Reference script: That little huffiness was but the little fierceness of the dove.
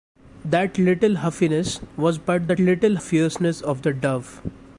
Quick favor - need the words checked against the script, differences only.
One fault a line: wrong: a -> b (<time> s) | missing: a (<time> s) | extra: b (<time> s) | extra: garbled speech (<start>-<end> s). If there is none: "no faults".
no faults